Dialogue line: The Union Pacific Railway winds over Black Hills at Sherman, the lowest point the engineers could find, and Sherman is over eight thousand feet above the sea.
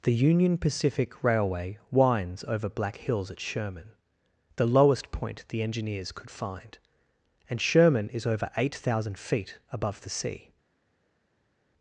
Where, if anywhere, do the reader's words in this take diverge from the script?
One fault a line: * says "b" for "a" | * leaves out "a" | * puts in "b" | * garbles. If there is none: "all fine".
all fine